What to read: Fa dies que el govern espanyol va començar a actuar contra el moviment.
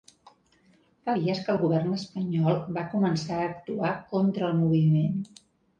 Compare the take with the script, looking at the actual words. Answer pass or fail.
pass